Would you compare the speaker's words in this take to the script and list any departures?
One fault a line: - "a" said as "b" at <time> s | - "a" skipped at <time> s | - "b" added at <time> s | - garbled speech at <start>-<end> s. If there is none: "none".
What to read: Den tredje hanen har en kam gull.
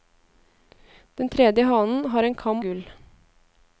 none